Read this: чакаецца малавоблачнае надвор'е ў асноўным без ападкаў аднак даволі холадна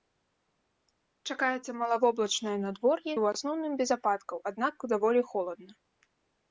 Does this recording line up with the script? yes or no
yes